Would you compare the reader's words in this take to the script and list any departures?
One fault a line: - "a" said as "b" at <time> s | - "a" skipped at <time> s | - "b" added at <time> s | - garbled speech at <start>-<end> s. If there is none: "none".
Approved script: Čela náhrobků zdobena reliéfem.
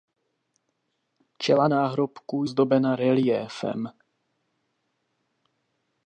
none